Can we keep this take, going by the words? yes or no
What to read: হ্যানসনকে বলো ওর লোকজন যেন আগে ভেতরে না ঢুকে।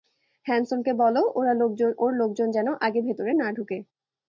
yes